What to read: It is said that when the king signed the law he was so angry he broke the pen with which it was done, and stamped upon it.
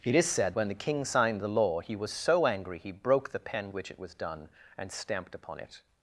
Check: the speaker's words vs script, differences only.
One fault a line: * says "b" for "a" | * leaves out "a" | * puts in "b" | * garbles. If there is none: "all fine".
* leaves out "that"
* leaves out "with"